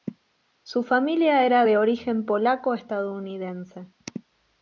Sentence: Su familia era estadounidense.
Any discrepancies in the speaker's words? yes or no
yes